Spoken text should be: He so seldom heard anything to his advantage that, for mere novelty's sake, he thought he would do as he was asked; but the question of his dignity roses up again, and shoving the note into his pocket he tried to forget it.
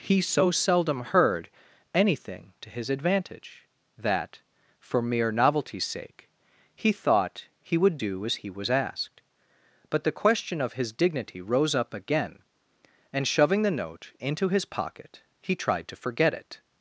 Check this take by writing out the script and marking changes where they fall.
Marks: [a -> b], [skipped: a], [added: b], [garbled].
He so seldom heard anything to his advantage that, for mere novelty's sake, he thought he would do as he was asked; but the question of his dignity [roses -> rose] up again, and shoving the note into his pocket he tried to forget it.